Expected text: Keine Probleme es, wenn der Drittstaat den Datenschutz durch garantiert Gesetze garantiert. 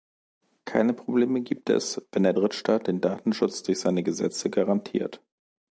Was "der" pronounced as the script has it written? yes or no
yes